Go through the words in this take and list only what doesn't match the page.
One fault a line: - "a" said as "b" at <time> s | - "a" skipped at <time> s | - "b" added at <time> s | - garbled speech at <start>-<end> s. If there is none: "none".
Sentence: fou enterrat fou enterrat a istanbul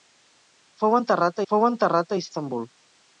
none